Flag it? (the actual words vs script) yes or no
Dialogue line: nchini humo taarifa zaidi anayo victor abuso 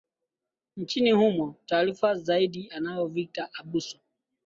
no